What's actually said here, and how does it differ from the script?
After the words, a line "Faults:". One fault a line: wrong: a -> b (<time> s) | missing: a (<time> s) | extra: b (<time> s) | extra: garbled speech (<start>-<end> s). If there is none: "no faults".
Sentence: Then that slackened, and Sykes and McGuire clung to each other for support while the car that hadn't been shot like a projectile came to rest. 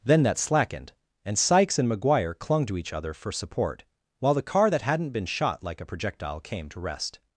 Then that slackened, and Sykes and McGuire clung to each other for support while the car that hadn't been shot like a projectile came to rest.
Faults:
no faults